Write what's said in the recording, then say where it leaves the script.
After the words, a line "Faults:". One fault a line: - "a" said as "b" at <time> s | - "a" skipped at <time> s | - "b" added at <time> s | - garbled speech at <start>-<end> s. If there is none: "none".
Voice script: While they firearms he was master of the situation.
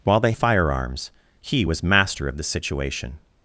While they firearms he was master of the situation.
Faults:
none